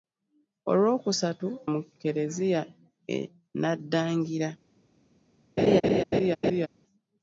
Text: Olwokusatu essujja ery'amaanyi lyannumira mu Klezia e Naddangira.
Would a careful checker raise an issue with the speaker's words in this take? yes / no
yes